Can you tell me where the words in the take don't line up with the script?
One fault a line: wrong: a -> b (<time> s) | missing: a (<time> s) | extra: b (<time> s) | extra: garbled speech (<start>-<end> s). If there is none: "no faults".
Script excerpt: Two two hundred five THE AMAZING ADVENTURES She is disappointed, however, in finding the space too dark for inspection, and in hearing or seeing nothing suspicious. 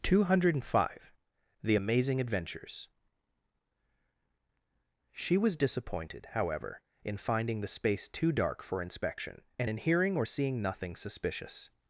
missing: two (0.2 s)
wrong: is -> was (5.4 s)